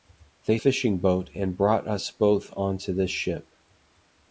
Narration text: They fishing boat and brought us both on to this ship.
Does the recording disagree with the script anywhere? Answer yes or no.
no